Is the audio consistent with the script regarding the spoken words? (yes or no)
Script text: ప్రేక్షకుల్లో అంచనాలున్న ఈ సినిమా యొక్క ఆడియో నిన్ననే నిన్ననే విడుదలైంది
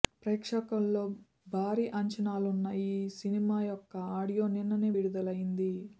no